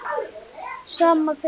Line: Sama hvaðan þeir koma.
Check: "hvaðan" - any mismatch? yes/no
yes